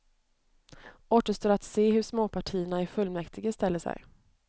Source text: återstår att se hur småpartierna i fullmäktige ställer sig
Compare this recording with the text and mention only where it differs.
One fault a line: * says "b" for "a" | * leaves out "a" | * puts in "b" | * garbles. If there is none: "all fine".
all fine